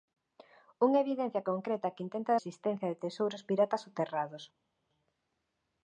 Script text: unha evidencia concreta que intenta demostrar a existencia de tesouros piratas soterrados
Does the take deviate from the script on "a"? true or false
true